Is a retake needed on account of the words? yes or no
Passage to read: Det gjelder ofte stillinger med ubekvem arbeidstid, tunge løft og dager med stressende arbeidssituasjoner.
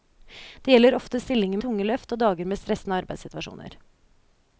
yes